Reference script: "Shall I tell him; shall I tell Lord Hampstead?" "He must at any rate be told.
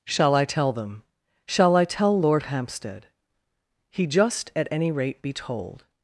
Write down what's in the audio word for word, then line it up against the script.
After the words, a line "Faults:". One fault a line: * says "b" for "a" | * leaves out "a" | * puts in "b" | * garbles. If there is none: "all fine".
"Shall I tell them; shall I tell Lord Hampstead?" "He just at any rate be told.
Faults:
* says "them" for "him"
* says "just" for "must"